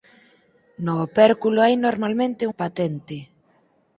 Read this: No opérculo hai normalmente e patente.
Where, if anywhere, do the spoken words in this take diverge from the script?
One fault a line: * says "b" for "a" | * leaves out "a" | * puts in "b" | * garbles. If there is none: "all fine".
all fine